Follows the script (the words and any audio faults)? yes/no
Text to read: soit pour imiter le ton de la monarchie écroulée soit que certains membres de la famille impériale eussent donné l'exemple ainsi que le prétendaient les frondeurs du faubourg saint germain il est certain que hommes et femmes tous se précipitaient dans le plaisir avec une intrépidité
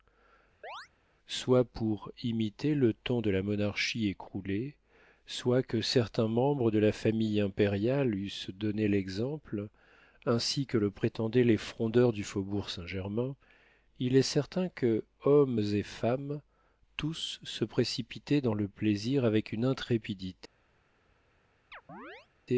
no